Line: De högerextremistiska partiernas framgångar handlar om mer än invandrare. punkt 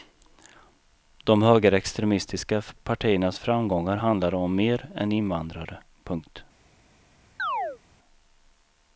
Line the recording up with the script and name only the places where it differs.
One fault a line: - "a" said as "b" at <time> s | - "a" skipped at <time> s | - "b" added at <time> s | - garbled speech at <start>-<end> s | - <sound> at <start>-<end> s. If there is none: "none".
- chirp at 7.4-7.8 s